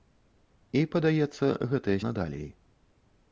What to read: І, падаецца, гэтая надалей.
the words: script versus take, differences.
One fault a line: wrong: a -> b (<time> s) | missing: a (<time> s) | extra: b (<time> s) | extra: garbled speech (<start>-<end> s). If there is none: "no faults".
no faults